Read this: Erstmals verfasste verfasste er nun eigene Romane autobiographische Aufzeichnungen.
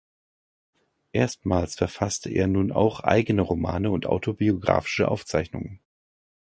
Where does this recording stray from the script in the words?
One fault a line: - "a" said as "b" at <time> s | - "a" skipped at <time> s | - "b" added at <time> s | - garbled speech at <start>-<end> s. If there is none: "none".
- "verfasste" skipped at 2.3 s
- "auch" added at 2.7 s
- "und" added at 3.9 s